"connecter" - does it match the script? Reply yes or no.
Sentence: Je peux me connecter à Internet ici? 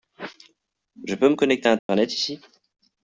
yes